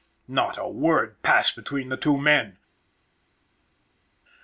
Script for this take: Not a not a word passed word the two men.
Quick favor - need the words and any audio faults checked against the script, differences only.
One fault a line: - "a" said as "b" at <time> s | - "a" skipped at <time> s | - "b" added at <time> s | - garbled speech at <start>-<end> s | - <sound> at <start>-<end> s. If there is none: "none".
- "not a" skipped at 0.7 s
- "word" said as "between" at 1.5 s